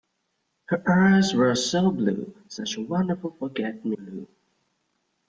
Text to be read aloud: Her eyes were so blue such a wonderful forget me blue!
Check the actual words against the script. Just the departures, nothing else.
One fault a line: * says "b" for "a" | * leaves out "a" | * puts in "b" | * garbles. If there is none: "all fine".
all fine